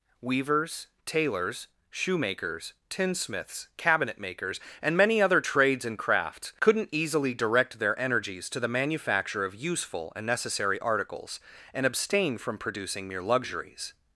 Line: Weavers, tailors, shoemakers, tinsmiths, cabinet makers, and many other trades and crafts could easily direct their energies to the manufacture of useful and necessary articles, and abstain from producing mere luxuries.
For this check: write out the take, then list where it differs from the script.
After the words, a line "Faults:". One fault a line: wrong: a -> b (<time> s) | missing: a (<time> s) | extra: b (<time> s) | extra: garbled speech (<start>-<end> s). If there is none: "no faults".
Weavers, tailors, shoemakers, tinsmiths, cabinet makers, and many other trades and crafts couldn't easily direct their energies to the manufacture of useful and necessary articles, and abstain from producing mere luxuries.
Faults:
wrong: could -> couldn't (6.6 s)